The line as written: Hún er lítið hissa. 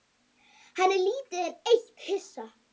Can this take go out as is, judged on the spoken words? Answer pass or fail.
fail